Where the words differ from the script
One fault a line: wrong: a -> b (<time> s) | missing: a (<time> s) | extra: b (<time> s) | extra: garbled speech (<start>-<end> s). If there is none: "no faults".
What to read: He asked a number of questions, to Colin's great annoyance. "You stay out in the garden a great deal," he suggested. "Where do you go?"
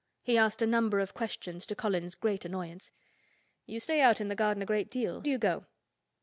missing: he suggested Where (5.2 s)